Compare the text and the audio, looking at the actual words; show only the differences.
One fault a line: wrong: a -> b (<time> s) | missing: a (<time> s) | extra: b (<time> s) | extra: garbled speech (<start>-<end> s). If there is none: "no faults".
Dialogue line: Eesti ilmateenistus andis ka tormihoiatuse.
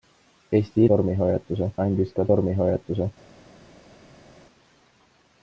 wrong: ilmateenistus -> tormihoiatuse (0.9 s)